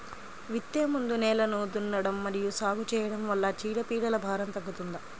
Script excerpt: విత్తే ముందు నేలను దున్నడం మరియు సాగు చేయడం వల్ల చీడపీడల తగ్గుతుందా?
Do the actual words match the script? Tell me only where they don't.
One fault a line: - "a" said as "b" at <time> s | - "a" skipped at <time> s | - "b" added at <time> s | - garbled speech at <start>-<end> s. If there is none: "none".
- "భారం" added at 4.2 s